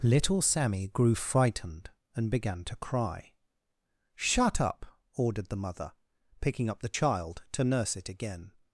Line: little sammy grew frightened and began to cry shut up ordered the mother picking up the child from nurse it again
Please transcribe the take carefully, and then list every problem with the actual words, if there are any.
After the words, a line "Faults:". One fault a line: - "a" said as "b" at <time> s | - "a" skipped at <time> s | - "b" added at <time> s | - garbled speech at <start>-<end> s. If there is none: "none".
little sammy grew frightened and began to cry shut up ordered the mother picking up the child to nurse it again
Faults:
- "from" said as "to" at 7.5 s